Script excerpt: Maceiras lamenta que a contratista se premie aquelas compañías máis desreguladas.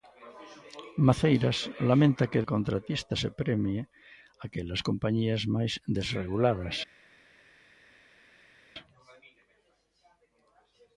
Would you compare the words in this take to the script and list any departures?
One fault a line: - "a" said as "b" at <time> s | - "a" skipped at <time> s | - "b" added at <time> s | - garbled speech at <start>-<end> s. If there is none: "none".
none